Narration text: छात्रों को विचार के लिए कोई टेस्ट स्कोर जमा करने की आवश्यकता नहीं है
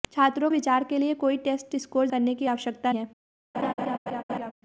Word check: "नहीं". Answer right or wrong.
wrong